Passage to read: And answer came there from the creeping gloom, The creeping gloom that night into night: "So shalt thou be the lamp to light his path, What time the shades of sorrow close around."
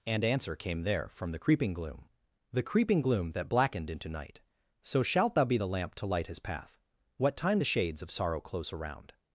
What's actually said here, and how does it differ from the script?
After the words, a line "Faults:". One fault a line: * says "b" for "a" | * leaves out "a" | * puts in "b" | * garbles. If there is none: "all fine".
And answer came there from the creeping gloom, The creeping gloom that blackened into night: "So shalt thou be the lamp to light his path, What time the shades of sorrow close around."
Faults:
* says "blackened" for "night"